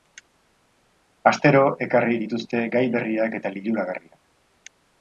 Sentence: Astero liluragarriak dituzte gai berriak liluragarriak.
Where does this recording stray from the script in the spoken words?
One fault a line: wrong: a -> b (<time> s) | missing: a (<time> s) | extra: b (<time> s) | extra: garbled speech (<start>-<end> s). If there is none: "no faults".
wrong: liluragarriak -> ekarri (1.9 s)
extra: eta (3.4 s)